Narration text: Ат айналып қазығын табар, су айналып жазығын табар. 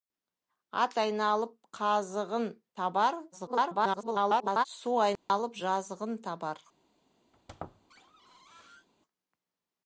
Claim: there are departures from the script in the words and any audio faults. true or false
true